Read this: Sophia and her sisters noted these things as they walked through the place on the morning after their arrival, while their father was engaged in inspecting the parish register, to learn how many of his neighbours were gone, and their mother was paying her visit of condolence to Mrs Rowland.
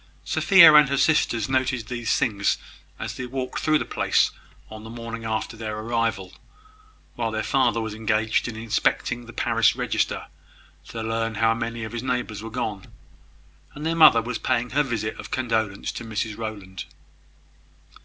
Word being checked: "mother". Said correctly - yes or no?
yes